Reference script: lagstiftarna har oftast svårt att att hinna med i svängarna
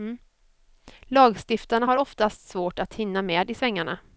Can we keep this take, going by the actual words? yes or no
no